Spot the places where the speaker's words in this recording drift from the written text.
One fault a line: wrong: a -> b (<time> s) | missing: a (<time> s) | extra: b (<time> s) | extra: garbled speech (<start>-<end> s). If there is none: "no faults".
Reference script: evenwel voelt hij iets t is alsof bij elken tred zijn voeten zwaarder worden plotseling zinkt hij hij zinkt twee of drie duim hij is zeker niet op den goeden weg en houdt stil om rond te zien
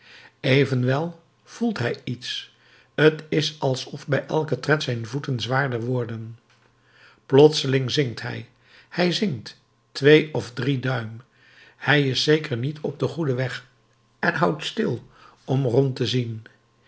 no faults